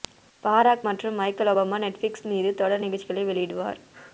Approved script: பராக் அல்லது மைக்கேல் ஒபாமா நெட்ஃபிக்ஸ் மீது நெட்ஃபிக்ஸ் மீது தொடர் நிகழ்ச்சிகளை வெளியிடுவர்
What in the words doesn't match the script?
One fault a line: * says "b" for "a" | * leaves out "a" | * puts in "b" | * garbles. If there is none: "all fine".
* says "மற்றும்" for "அல்லது"
* leaves out "நெட்ஃபிக்ஸ் மீது"